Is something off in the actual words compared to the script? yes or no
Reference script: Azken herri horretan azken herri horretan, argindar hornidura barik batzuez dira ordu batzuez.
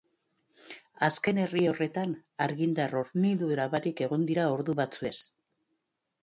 yes